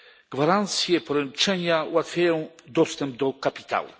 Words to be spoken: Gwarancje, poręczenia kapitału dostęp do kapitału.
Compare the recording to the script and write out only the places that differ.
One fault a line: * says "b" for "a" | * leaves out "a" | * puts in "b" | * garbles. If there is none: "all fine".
* says "ułatwiają" for "kapitału"